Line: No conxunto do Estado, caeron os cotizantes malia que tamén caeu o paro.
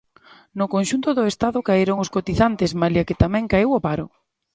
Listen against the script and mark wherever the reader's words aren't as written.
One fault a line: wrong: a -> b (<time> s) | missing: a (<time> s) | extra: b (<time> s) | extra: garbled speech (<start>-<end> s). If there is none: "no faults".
no faults